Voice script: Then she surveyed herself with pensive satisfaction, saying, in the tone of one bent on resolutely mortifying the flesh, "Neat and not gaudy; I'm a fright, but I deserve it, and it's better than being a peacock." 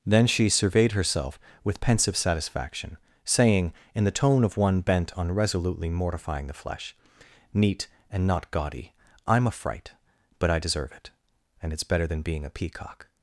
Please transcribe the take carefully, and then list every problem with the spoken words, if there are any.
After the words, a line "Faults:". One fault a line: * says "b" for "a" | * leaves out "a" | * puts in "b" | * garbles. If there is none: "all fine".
Then she surveyed herself with pensive satisfaction, saying, in the tone of one bent on resolutely mortifying the flesh, "Neat and not gaudy; I'm a fright, but I deserve it, and it's better than being a peacock."
Faults:
all fine